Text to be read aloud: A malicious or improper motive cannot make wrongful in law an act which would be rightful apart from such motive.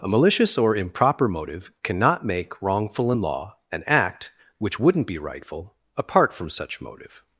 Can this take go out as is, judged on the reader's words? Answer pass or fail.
fail